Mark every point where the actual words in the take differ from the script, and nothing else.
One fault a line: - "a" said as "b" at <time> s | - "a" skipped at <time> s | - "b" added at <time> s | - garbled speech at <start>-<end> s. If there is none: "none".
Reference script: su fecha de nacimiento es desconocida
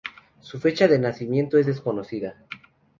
none